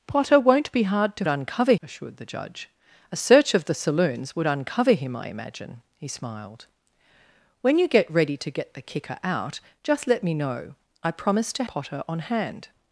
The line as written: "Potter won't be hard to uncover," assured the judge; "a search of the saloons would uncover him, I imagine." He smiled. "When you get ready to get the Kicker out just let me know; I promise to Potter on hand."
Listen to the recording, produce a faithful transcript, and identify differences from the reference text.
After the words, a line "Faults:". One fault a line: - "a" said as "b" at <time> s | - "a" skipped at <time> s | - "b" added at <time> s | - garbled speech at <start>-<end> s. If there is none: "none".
"Potter won't be hard to uncover," assured the judge; "a search of the saloons would uncover him, I imagine." He smiled. "When you get ready to get the Kicker out just let me know; I promise to Potter on hand."
Faults:
none